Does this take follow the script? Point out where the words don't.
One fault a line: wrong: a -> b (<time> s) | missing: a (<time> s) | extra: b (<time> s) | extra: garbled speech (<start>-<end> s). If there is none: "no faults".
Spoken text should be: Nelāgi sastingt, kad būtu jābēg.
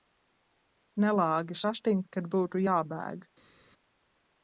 no faults